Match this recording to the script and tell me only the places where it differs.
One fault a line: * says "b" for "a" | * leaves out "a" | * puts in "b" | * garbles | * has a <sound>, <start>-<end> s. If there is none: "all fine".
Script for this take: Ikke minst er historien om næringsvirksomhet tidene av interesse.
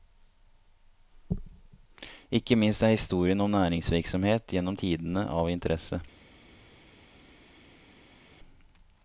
* puts in "gjennom"